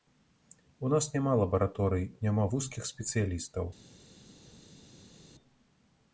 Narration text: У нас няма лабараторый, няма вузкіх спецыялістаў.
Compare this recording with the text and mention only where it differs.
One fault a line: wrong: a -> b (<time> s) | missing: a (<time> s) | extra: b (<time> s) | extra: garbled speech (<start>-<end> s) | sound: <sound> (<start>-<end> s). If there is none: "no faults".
no faults